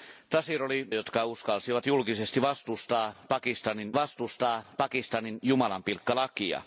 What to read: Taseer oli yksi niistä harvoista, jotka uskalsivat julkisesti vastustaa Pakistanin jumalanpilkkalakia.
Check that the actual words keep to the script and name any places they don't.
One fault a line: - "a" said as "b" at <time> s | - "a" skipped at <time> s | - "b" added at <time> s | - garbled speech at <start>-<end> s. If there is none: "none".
- "yksi niistä harvoista" skipped at 0.9 s
- "vastustaa Pakistanin" added at 3.9 s